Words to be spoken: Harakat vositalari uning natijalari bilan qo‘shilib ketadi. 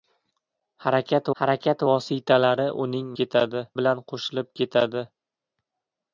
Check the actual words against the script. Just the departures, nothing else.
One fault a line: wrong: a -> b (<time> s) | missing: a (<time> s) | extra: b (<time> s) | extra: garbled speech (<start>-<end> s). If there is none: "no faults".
extra: harakat (1.4 s)
wrong: natijalari -> ketadi (3.2 s)